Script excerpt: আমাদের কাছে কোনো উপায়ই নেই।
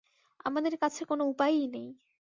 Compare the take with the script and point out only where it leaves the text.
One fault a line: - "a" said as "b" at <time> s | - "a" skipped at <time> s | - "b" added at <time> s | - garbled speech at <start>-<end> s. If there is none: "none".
none